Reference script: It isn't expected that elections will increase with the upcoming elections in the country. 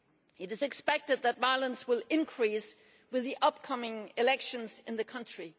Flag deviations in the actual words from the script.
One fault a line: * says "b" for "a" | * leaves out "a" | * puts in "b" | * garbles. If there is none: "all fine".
* says "is" for "isn't"
* says "violence" for "elections"